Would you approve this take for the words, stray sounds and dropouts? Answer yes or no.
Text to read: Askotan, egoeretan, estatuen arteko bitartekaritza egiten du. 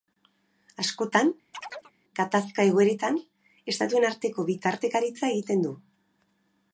no